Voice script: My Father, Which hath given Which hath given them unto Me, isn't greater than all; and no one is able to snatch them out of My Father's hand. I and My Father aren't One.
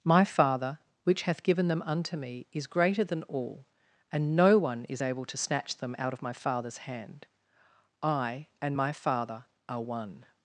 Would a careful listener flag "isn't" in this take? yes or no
yes